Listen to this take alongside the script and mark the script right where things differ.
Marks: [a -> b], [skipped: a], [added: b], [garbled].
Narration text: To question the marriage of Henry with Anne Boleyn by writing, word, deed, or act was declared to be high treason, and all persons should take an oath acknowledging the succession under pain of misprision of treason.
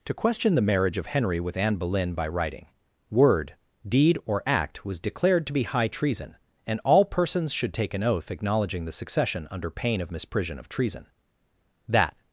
To question the marriage of Henry with Anne Boleyn by writing, word, deed, or act was declared to be high treason, and all persons should take an oath acknowledging the succession under pain of misprision of treason. [added: That]